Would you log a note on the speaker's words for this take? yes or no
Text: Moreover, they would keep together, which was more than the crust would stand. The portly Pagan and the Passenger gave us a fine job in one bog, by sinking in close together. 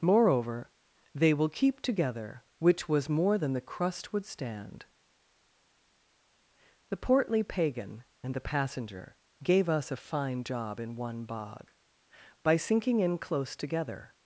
yes